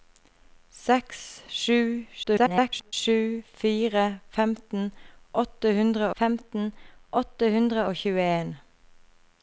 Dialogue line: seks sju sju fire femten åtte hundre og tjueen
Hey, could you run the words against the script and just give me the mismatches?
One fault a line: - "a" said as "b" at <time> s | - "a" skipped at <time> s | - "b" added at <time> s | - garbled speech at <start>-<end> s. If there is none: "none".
- garbled speech at 2.2-2.9 s
- "femten åtte hundre" added at 6.2 s